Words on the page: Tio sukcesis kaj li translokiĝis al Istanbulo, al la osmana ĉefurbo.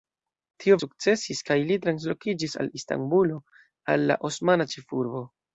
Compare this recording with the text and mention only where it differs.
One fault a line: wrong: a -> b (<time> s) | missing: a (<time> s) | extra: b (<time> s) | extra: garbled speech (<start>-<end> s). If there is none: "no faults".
no faults